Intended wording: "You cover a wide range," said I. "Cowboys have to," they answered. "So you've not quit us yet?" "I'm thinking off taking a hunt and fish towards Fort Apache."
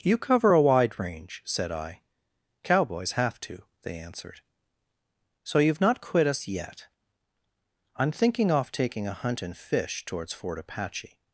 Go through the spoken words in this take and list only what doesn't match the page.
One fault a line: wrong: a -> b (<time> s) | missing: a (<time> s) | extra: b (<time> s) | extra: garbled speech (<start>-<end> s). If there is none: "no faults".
no faults